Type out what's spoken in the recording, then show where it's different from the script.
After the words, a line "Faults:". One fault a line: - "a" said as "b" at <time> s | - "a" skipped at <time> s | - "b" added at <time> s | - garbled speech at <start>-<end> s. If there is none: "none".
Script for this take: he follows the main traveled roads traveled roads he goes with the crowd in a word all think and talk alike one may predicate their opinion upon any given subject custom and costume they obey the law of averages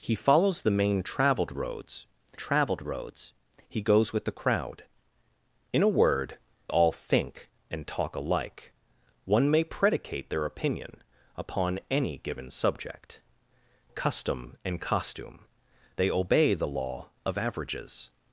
he follows the main traveled roads traveled roads he goes with the crowd in a word all think and talk alike one may predicate their opinion upon any given subject custom and costume they obey the law of averages
Faults:
none